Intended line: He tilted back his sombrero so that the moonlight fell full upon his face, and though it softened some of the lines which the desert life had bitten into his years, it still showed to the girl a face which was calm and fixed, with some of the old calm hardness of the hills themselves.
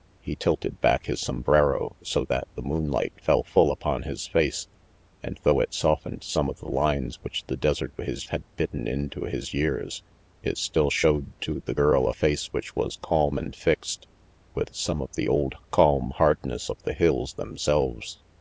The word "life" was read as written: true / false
false